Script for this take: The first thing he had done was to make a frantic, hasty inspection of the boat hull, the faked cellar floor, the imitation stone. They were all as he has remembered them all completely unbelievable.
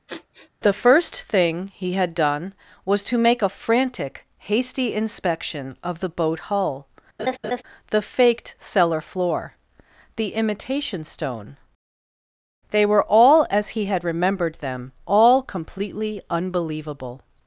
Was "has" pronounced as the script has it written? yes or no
no